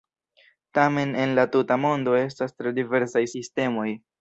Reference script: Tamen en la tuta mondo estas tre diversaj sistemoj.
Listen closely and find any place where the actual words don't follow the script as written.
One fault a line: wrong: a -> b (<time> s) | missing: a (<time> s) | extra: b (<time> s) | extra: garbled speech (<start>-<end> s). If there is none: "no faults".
no faults